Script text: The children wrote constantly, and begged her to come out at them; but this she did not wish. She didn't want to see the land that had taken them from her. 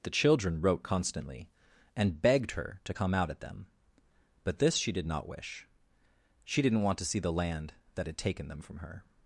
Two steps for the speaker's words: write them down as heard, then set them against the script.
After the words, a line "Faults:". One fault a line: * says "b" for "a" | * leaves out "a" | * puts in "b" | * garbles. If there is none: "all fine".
The children wrote constantly, and begged her to come out at them; but this she did not wish. She didn't want to see the land that had taken them from her.
Faults:
all fine